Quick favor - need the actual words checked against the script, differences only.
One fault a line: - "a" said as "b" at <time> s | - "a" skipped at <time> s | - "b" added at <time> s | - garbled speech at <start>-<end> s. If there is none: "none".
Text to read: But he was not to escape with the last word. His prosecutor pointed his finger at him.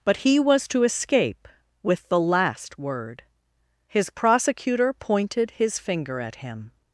- "not" skipped at 0.7 s